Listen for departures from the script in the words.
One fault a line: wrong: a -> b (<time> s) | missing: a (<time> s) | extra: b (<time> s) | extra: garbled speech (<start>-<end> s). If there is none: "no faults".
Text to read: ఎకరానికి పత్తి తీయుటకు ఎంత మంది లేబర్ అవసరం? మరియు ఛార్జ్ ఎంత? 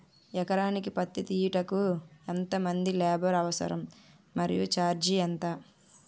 no faults